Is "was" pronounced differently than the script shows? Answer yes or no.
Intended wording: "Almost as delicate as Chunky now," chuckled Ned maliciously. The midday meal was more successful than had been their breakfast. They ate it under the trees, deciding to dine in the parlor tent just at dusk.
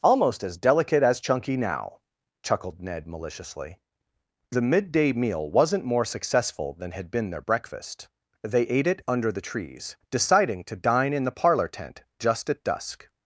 yes